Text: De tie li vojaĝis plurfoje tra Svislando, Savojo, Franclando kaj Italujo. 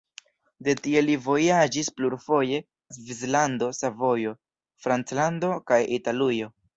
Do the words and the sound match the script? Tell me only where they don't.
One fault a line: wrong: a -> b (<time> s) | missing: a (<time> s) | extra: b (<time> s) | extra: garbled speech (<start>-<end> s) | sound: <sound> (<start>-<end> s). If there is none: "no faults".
missing: tra (2.6 s)